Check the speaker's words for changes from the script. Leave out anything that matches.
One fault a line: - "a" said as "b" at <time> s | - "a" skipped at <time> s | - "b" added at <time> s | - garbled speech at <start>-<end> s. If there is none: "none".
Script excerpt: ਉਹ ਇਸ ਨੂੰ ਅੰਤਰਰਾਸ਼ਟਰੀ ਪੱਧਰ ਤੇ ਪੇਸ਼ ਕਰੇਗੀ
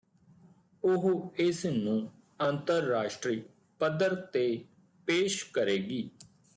none